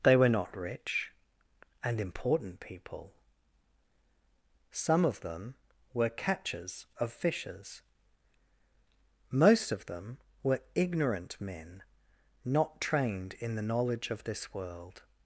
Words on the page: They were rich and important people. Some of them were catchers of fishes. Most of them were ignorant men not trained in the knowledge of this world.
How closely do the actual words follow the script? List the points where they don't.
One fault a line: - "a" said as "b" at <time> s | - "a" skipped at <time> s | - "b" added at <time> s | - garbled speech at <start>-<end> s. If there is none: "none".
- "not" added at 0.3 s